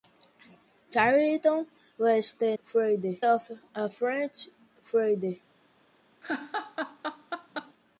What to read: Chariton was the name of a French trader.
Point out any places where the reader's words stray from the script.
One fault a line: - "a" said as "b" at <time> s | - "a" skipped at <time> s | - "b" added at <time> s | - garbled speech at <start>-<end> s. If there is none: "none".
- "name" said as "trader" at 2.6 s